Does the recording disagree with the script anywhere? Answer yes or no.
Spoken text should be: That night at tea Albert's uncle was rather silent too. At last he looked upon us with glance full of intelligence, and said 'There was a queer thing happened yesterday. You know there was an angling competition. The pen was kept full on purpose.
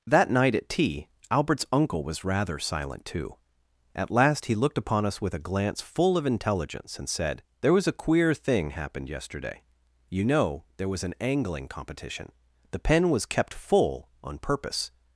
yes